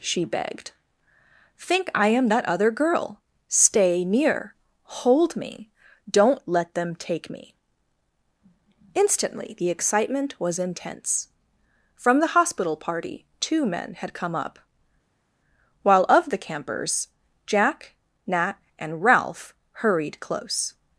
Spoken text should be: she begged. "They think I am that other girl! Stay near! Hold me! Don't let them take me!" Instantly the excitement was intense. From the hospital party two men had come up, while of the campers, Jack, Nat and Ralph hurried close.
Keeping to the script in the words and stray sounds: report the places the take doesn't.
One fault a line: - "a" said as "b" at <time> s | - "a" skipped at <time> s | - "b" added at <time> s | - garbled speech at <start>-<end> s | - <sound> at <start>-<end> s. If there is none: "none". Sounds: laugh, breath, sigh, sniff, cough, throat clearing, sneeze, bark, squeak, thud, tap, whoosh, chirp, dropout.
- "They" skipped at 0.7 s